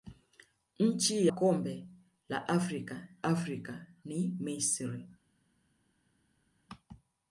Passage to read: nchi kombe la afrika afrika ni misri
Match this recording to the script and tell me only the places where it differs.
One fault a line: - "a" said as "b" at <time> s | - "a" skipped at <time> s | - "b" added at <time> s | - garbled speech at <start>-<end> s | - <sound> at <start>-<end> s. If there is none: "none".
none